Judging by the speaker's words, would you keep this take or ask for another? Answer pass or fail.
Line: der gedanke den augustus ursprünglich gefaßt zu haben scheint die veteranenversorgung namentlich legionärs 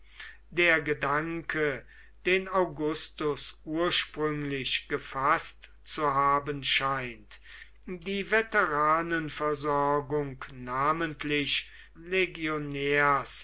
pass